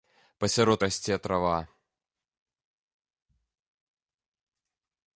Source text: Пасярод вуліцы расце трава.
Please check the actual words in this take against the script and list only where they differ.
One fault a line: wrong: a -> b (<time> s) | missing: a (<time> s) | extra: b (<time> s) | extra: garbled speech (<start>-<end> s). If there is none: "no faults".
missing: вуліцы (0.8 s)